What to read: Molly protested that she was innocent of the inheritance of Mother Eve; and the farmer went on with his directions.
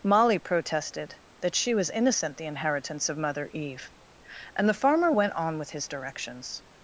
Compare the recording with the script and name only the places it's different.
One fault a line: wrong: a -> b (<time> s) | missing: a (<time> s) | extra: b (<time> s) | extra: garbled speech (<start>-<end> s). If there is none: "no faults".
missing: of (2.4 s)